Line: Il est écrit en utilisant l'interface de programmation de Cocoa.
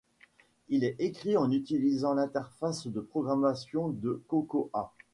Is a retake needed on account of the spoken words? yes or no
no